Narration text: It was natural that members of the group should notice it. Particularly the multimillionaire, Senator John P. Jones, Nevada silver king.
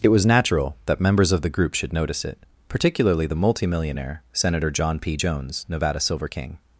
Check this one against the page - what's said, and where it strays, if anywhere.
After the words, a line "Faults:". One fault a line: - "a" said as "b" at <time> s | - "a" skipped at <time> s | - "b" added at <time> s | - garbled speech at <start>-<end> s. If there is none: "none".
It was natural that members of the group should notice it. Particularly the multimillionaire, Senator John P. Jones, Nevada silver king.
Faults:
none